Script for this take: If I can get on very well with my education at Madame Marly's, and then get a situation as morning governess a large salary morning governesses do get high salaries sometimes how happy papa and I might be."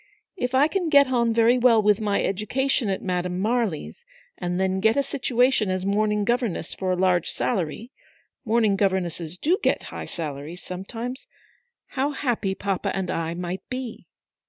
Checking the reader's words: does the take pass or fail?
fail